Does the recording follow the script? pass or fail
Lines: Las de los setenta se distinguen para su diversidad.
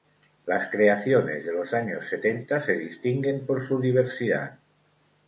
fail